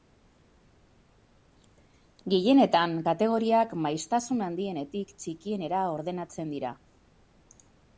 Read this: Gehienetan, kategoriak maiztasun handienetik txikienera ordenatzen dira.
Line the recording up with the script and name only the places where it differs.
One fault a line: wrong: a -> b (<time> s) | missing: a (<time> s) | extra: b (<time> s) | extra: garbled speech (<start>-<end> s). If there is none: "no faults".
no faults